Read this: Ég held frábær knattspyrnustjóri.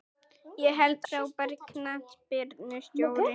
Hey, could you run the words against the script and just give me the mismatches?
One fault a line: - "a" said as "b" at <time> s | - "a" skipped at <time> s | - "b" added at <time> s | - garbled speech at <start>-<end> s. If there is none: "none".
none